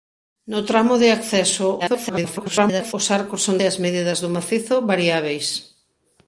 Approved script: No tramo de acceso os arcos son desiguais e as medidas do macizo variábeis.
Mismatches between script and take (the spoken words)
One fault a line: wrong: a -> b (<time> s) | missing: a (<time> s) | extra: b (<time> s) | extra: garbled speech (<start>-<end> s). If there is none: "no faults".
extra: garbled speech (1.8-2.9 s)
missing: desiguais (3.6 s)